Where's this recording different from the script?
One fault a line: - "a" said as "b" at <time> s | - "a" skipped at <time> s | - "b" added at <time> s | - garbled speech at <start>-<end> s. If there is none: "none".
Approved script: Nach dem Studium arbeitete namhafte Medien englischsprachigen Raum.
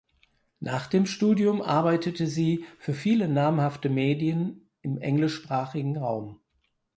- "sie für viele" added at 2.2 s
- "im" added at 4.8 s